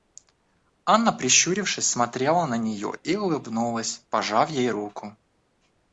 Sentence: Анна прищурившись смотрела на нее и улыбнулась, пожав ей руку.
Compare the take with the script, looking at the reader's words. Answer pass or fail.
pass